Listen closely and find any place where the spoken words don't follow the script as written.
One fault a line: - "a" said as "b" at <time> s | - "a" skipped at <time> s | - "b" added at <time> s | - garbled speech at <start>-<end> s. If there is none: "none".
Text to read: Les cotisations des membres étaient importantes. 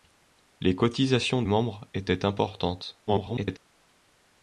- "des" skipped at 1.4 s
- garbled speech at 3.1-3.6 s